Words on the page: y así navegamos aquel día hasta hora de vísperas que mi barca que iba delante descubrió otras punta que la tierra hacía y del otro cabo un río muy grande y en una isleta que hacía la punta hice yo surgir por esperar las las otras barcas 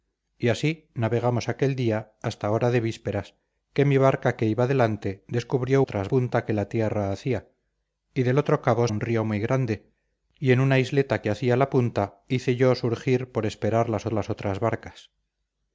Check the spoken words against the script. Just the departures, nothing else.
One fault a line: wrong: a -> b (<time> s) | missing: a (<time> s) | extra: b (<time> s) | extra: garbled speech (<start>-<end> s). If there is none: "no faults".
no faults